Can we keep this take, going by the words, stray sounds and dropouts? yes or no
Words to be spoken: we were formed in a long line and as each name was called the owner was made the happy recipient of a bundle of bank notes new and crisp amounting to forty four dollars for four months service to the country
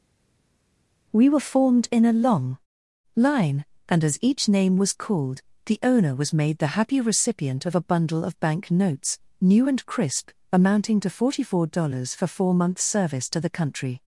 yes